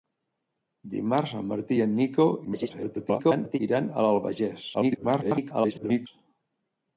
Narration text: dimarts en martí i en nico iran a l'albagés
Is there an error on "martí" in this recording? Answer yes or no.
no